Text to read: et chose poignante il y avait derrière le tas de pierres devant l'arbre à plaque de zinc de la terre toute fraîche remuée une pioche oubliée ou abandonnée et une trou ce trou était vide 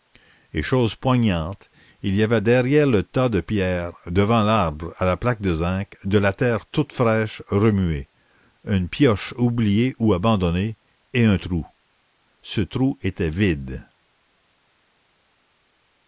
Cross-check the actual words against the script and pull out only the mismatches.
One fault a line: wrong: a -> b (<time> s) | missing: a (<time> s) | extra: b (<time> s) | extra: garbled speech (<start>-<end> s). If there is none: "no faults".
extra: la (5.0 s)
wrong: une -> un (11.2 s)